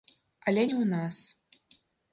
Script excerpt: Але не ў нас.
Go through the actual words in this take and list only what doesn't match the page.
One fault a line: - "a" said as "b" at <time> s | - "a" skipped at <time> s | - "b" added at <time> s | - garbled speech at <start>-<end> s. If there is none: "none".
none